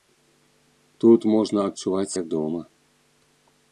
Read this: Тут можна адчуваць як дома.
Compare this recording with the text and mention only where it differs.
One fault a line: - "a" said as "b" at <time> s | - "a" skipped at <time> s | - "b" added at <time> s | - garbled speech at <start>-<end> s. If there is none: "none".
none